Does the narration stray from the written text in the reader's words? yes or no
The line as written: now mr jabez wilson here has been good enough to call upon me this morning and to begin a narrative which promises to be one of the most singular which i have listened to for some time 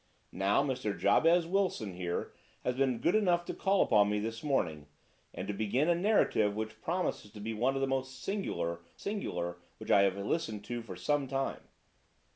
yes